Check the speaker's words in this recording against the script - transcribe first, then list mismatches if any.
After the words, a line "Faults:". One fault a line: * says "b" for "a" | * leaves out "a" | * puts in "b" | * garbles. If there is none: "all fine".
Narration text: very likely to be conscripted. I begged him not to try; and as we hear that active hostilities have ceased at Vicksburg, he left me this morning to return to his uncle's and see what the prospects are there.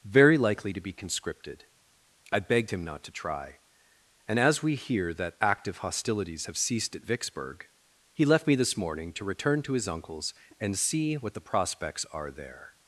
very likely to be conscripted. I begged him not to try; and as we hear that active hostilities have ceased at Vicksburg, he left me this morning to return to his uncle's and see what the prospects are there.
Faults:
all fine